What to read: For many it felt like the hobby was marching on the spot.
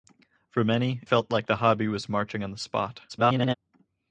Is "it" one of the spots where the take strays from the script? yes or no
yes